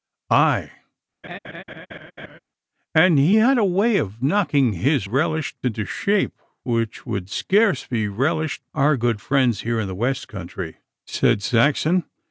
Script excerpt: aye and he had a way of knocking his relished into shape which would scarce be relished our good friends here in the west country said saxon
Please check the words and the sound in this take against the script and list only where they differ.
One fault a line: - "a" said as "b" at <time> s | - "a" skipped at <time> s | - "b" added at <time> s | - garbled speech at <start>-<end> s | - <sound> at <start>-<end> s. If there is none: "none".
- laugh at 1.2-2.4 s